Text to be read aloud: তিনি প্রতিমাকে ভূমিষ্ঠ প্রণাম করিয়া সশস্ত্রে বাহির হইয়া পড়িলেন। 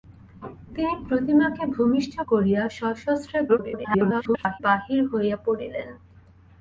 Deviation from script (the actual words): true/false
true